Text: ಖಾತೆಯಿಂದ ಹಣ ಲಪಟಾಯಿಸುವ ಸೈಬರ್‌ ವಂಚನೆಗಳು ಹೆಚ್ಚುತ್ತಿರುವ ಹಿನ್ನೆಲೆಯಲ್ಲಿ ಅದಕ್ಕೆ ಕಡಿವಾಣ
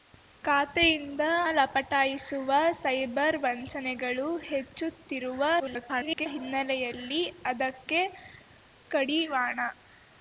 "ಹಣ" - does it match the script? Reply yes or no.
no